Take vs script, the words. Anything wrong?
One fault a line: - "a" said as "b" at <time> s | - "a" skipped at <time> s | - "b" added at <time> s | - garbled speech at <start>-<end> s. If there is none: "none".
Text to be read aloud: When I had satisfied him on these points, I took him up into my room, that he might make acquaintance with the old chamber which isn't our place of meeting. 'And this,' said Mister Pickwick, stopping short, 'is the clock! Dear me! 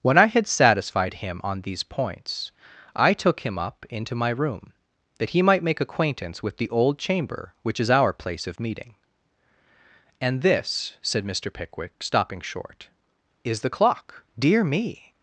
- "isn't" said as "is" at 7.8 s